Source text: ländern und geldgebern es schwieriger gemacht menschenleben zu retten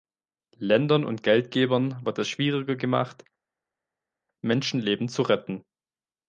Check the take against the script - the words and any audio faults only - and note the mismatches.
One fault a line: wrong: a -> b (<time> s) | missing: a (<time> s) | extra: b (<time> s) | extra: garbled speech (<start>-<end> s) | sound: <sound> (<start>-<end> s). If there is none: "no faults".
extra: wird (2.0 s)